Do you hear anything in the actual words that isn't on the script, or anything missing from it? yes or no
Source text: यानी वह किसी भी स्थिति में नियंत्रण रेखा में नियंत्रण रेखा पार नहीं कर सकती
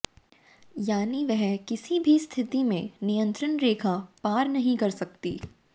yes